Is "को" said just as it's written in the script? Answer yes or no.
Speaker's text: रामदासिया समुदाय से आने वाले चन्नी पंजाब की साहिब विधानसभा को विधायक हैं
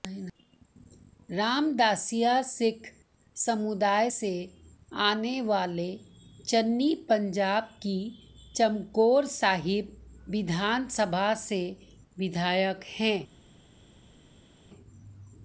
no